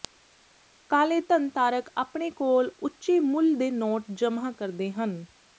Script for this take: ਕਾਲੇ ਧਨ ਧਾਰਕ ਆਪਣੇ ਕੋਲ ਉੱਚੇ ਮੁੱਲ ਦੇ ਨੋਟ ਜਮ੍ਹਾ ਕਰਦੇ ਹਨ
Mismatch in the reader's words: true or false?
false